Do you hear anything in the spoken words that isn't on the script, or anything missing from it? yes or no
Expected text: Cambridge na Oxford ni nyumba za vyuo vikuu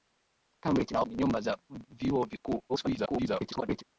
yes